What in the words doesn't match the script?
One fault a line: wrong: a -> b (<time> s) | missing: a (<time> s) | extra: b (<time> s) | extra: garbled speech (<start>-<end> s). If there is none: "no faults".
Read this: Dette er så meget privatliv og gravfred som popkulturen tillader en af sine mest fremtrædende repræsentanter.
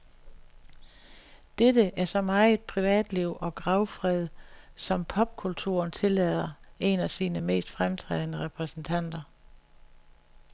no faults